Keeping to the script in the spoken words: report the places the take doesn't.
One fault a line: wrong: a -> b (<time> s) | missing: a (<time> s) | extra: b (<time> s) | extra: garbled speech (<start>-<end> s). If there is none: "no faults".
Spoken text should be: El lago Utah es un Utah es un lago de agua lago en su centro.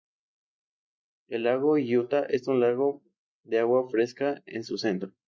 missing: Utah es un (2.6 s)
wrong: lago -> fresca (3.9 s)